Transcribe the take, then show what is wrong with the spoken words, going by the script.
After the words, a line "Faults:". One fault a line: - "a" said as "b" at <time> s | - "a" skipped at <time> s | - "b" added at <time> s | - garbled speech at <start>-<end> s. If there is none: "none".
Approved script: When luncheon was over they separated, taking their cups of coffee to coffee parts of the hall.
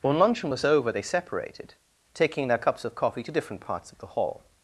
When luncheon was over they separated, taking their cups of coffee to different parts of the hall.
Faults:
- "coffee" said as "different" at 3.3 s